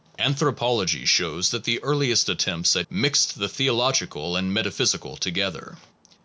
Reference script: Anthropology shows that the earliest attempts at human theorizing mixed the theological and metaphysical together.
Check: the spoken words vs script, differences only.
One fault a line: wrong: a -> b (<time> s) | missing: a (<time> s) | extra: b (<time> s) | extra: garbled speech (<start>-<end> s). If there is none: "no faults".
missing: human theorizing (2.9 s)